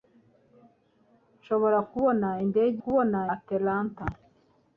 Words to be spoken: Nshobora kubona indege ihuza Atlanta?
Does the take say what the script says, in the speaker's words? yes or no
no